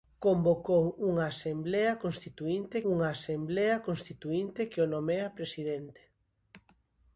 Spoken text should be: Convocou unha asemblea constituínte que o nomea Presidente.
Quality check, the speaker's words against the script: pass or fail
fail